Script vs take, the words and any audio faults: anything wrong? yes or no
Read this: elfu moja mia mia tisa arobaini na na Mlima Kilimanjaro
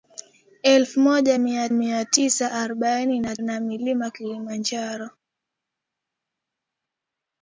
no